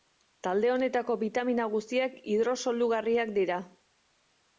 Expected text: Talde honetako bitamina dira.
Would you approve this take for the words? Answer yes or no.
no